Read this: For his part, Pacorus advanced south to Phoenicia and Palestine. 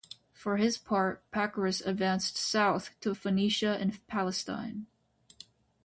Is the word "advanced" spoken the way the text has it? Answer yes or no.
yes